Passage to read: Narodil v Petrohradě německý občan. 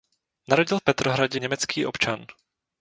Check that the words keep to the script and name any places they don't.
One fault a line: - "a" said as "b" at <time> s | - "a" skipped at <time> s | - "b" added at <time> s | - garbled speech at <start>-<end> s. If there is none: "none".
none